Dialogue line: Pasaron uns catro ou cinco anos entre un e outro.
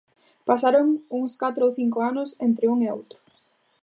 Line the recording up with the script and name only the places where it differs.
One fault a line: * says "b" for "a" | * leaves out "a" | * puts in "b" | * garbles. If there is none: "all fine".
all fine